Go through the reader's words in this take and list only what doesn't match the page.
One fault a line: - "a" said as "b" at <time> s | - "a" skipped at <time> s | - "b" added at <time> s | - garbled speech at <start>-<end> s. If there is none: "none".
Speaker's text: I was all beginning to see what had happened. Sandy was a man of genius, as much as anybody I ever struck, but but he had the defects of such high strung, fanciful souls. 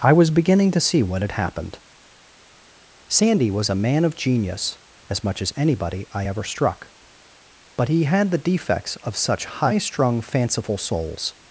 - "all" skipped at 0.3 s
- "but" skipped at 7.9 s